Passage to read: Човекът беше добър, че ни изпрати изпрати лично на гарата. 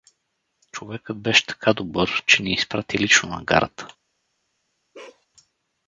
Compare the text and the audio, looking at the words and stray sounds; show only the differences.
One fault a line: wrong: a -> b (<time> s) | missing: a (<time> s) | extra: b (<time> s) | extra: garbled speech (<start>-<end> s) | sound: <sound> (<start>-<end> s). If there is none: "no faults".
extra: така (1.4 s)
missing: изпрати (3.0 s)
sound: bark (4.9-5.3 s)